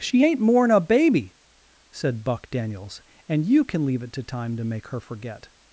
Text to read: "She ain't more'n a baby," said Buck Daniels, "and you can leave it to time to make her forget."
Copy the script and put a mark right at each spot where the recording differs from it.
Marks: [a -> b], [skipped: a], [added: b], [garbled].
"She ain't more'n a baby," said Buck Daniels, "and you can leave it to time to make her forget."